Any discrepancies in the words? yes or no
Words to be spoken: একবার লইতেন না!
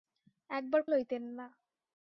no